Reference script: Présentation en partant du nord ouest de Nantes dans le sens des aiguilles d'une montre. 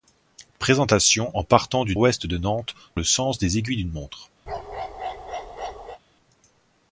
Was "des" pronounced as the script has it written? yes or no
yes